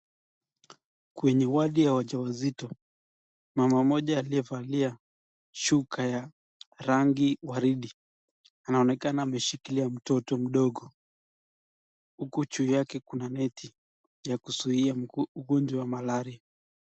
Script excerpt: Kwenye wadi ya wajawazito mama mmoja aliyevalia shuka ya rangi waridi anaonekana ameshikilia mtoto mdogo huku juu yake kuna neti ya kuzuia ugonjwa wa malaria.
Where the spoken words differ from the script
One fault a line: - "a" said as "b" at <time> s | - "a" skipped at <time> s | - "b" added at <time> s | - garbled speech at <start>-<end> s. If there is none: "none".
none